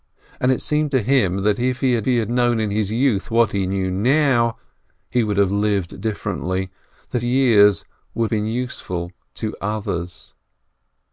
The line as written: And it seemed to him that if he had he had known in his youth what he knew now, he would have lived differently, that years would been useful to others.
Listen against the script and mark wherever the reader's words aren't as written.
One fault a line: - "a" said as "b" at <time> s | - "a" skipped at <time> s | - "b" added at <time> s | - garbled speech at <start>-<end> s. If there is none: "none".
none